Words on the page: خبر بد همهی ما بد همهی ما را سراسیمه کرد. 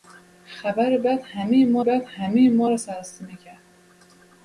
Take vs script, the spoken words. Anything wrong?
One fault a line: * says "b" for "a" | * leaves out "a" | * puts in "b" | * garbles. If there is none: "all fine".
all fine